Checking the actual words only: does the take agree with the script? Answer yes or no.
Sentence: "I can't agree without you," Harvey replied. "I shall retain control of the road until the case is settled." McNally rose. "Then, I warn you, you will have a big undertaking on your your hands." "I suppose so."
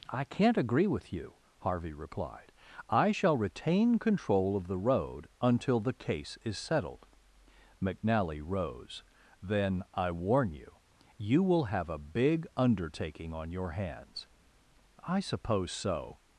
no